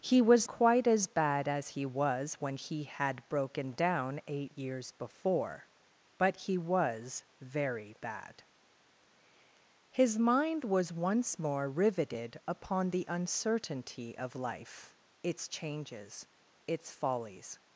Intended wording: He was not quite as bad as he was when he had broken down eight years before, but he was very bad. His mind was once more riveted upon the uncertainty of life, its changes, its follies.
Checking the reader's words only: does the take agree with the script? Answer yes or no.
no